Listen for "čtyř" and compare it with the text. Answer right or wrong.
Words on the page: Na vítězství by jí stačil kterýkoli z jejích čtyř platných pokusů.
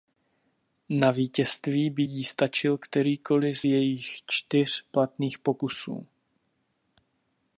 right